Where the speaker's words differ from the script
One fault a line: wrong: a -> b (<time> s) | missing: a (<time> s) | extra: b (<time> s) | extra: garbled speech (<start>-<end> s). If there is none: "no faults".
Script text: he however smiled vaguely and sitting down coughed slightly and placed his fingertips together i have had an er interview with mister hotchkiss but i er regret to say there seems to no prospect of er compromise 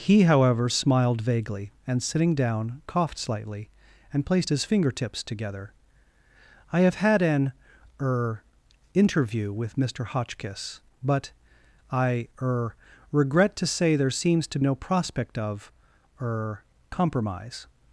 no faults